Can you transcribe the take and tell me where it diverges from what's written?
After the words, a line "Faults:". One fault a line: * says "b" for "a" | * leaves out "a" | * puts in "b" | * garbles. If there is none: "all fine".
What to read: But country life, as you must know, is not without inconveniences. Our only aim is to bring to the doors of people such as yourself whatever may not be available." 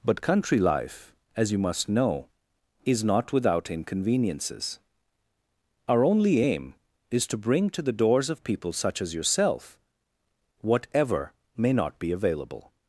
But country life, as you must know, is not without inconveniences. Our only aim is to bring to the doors of people such as yourself whatever may not be available."
Faults:
all fine